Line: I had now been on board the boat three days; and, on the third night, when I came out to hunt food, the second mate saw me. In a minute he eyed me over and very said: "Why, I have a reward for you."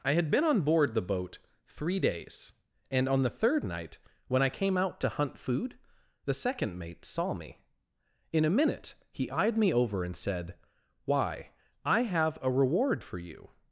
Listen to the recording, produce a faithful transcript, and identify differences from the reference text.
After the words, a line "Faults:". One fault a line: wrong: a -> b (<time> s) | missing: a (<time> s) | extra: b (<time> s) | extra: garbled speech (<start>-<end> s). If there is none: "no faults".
I had been on board the boat three days; and, on the third night, when I came out to hunt food, the second mate saw me. In a minute he eyed me over and said: "Why, I have a reward for you."
Faults:
missing: now (0.3 s)
missing: very (10.2 s)